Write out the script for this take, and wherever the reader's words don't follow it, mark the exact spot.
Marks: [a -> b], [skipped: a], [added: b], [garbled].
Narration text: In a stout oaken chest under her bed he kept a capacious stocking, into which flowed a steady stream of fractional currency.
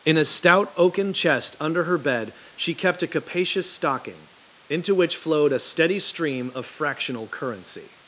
In a stout oaken chest under her bed [he -> she] kept a capacious stocking, into which flowed a steady stream of fractional currency.